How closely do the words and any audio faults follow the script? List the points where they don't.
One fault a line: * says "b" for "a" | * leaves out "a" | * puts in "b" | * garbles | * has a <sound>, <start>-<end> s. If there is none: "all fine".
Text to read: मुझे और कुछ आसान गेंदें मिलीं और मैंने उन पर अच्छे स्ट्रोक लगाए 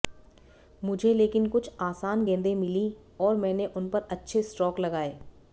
* says "लेकिन" for "और"